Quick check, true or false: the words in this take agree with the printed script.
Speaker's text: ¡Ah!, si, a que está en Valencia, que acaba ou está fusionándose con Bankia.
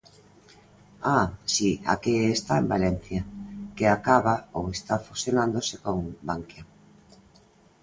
true